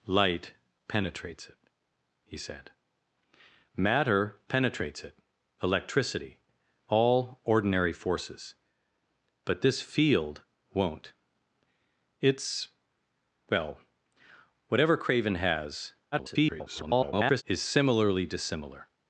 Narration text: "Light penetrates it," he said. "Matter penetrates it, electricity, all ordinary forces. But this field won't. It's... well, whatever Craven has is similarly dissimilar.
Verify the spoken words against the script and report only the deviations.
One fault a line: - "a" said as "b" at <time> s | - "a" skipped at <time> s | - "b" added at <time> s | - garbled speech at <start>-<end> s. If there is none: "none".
- garbled speech at 16.1-17.4 s